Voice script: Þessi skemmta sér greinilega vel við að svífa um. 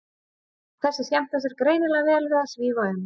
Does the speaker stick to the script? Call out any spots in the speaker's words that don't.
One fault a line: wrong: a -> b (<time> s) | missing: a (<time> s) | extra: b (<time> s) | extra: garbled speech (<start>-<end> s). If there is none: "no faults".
no faults